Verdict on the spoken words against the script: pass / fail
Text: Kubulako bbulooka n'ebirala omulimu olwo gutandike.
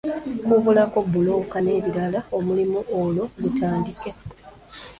pass